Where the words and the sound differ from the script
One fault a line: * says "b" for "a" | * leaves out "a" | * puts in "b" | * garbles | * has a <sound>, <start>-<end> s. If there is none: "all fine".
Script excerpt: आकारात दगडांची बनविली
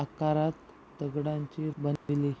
* has a dropout, 2.0-2.1 s